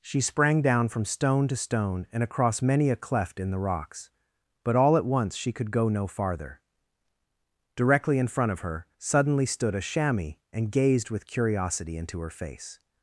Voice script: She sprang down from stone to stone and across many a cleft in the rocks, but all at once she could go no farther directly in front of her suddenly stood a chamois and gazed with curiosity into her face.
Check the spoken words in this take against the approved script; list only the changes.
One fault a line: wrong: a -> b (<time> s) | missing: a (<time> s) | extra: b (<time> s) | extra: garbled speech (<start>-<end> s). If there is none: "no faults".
no faults